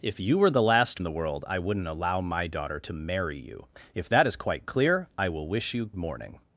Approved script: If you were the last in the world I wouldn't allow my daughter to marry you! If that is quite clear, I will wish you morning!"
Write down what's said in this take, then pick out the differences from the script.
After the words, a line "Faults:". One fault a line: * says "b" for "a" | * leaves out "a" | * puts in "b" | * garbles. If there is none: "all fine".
If you were the last in the world I wouldn't allow my daughter to marry you! If that is quite clear, I will wish you morning!"
Faults:
all fine